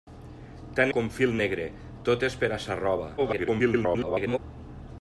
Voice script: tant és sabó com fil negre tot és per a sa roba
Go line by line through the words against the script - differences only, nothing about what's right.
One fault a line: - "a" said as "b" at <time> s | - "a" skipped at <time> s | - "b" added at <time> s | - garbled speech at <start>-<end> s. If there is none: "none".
- "és sabó" skipped at 0.9 s
- garbled speech at 3.2-4.4 s